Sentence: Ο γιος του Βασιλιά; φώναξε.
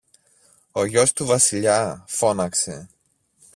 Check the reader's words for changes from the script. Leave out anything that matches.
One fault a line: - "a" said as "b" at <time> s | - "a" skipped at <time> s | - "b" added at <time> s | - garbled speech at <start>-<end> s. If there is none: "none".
none